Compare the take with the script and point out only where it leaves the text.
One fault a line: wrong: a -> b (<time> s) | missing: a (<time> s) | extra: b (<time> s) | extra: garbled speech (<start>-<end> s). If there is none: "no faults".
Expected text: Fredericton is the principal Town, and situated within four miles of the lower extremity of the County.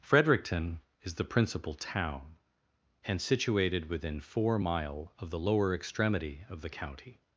wrong: miles -> mile (4.6 s)